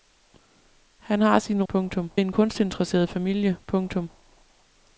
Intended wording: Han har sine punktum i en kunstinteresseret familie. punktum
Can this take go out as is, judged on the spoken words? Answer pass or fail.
pass